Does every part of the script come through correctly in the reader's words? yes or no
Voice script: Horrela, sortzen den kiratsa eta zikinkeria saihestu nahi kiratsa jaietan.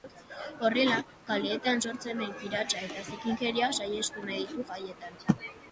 no